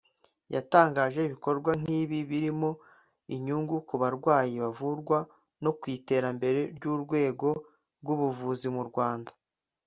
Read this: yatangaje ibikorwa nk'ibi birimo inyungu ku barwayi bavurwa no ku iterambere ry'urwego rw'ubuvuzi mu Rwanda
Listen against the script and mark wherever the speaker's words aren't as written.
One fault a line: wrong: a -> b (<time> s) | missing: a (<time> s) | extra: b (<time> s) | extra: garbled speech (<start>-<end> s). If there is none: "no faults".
no faults